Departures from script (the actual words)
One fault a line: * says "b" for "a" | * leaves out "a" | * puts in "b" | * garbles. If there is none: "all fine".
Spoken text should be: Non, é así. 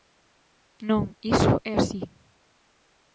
* puts in "iso"